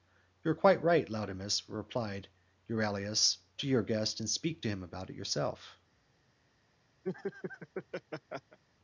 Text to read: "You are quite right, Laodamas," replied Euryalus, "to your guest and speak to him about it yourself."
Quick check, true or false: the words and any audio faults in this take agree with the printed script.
false